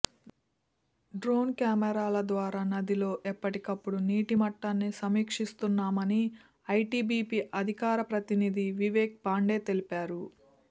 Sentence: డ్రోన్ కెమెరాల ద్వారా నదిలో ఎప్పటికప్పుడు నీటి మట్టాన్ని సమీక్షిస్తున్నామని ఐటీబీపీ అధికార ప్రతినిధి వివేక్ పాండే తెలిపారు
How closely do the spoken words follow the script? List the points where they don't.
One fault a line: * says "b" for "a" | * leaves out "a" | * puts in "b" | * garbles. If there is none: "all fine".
all fine